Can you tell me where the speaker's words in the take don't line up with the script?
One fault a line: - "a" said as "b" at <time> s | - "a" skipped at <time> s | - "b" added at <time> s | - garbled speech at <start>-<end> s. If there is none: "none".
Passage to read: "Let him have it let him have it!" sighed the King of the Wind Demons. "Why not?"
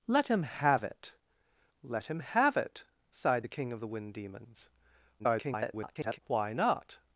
- garbled speech at 5.2-6.2 s